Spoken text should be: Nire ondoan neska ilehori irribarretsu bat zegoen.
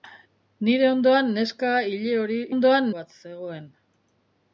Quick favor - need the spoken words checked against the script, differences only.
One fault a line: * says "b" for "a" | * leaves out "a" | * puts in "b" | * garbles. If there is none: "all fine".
* says "ondoan" for "irribarretsu"